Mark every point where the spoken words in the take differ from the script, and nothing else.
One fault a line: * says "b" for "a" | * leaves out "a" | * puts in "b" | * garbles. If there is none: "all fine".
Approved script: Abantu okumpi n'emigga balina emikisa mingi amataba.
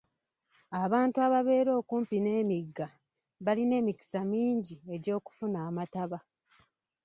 * puts in "ababeera"
* puts in "egy'okufuna"